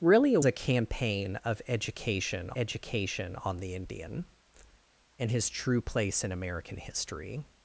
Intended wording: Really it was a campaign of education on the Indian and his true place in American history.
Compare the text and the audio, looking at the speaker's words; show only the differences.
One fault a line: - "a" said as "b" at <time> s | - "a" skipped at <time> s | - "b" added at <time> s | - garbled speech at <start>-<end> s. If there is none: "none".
- "was" skipped at 0.4 s
- "education" added at 2.6 s